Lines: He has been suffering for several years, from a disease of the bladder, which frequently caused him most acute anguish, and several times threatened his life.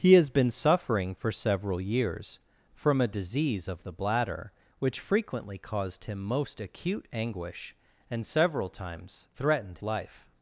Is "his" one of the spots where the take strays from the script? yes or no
yes